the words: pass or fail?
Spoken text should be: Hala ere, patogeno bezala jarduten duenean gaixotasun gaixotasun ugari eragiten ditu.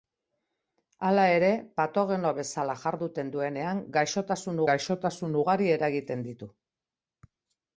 pass